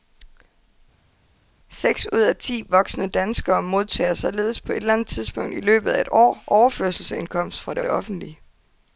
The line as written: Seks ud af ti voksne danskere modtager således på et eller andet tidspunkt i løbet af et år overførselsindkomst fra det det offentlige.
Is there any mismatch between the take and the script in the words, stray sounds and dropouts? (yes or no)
no